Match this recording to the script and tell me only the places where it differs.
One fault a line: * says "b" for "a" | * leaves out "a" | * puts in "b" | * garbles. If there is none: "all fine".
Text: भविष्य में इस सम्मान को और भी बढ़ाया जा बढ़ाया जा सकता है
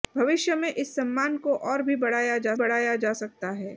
all fine